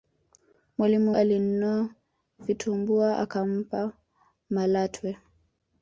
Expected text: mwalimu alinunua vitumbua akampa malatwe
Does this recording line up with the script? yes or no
yes